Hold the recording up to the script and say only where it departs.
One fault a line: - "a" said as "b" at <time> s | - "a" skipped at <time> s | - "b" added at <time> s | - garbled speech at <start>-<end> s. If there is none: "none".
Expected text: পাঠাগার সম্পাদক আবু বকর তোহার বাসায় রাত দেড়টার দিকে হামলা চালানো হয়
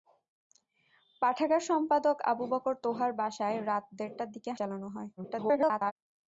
- "হামলা" skipped at 4.5 s
- garbled speech at 5.2-5.9 s